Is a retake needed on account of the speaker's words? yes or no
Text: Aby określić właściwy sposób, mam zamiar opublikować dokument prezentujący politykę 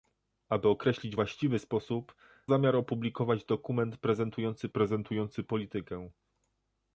yes